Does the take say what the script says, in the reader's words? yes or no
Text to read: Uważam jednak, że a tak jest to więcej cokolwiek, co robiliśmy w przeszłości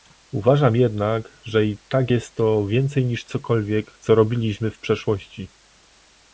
no